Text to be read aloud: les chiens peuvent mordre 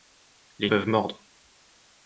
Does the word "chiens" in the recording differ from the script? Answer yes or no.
yes